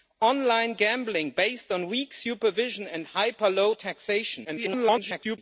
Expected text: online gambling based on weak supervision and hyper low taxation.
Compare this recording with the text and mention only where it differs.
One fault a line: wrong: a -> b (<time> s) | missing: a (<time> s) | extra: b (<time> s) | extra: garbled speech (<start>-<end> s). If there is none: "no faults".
extra: garbled speech (4.4-5.4 s)